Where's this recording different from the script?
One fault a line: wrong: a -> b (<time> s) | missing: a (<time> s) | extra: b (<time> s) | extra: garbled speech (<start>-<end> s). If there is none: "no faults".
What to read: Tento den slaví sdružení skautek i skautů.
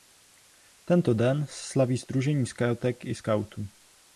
no faults